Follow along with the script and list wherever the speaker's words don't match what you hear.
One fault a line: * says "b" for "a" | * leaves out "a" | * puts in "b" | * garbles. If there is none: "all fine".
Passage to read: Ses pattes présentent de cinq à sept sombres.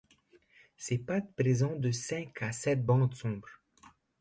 * puts in "bandes"